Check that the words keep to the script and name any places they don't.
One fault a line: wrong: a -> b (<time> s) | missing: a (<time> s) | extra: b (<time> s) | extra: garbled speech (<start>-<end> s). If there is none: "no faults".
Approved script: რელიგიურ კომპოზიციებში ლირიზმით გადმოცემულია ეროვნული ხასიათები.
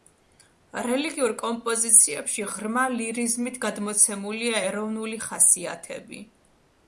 extra: ღრმა (2.5 s)